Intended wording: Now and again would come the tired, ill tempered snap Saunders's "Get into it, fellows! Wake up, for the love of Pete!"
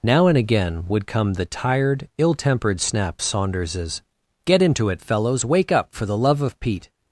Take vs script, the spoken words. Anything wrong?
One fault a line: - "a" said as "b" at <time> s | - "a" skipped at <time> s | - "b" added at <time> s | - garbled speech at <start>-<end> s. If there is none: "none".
none